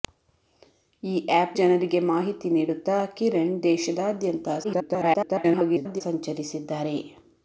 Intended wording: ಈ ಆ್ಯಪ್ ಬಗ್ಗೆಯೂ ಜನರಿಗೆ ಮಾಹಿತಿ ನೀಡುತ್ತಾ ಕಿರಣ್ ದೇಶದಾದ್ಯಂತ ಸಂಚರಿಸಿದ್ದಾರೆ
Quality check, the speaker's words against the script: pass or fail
fail